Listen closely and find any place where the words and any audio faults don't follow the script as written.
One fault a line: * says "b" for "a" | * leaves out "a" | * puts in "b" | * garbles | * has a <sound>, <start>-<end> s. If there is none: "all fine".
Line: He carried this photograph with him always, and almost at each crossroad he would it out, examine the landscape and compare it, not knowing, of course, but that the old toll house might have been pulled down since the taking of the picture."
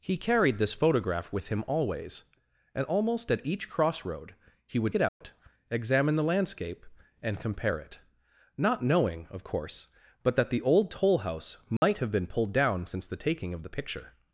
* has a dropout, 5.1-5.2 s
* has a dropout, 11.8-11.8 s